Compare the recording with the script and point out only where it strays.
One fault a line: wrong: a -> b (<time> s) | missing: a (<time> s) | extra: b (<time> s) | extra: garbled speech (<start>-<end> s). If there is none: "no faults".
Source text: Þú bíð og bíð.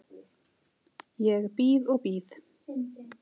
wrong: Þú -> Ég (1.3 s)